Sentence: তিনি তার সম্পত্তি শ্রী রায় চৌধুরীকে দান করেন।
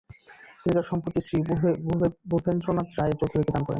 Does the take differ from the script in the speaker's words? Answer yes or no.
yes